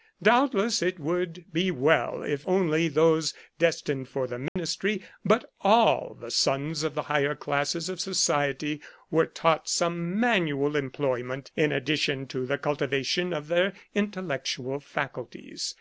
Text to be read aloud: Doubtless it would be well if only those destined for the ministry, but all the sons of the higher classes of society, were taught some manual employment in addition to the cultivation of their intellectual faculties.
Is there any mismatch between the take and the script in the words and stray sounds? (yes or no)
yes